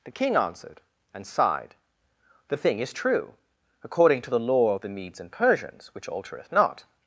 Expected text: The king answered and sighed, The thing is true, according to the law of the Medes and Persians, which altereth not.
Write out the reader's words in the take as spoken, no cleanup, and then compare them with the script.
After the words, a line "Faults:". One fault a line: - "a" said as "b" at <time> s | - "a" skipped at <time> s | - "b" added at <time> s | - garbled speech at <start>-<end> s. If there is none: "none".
The king answered and sighed, The thing is true, according to the law of the Medes and Persians, which altereth not.
Faults:
none